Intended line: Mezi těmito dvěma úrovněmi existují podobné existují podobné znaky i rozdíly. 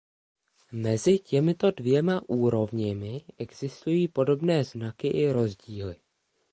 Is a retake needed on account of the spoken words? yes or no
yes